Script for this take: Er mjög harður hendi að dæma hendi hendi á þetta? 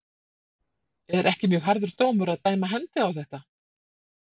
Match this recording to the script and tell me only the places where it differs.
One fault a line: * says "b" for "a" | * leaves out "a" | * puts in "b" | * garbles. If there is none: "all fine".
* puts in "ekki"
* says "dómur" for "hendi"
* leaves out "hendi"